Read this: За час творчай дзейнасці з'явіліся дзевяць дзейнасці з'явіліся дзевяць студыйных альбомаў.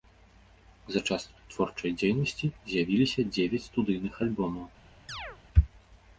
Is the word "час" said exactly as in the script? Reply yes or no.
yes